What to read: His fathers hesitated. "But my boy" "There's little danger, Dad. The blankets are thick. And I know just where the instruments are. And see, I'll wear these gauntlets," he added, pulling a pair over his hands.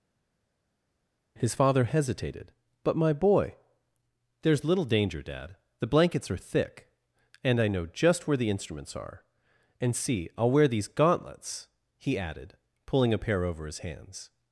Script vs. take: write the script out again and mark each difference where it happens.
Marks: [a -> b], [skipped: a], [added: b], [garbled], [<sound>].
His [fathers -> father] hesitated. "But my boy" "There's little danger, Dad. The blankets are thick. And I know just where the instruments are. And see, I'll wear these gauntlets," he added, pulling a pair over his hands.